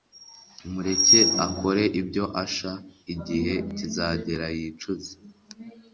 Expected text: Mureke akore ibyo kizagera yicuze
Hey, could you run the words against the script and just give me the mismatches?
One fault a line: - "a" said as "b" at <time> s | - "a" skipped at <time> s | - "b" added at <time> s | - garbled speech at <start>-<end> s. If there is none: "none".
- "asha igihe" added at 2.4 s